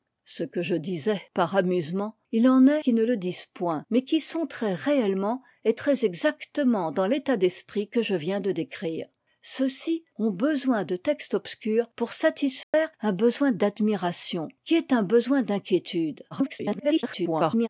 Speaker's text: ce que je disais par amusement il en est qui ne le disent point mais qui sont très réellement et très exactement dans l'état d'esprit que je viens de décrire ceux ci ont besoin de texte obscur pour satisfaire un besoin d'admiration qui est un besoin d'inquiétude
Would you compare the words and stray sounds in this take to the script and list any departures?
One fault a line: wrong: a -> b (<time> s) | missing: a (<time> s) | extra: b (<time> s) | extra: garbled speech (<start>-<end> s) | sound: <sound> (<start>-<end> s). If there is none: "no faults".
sound: dropout (12.6-12.7 s)
extra: garbled speech (16.3-17.7 s)